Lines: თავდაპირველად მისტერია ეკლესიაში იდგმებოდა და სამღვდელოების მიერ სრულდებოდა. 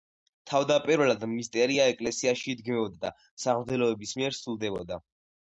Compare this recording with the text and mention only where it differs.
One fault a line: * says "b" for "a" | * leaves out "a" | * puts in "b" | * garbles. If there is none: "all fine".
all fine